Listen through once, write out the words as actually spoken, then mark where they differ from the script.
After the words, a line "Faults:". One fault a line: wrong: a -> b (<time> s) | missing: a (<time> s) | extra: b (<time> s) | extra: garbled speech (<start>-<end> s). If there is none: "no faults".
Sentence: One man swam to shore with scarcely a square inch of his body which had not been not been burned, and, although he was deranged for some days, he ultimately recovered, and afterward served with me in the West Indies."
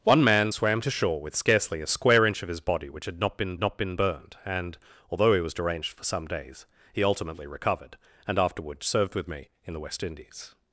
One man swam to shore with scarcely a square inch of his body which had not been not been burned, and, although he was deranged for some days, he ultimately recovered, and afterward served with me in the West Indies."
Faults:
no faults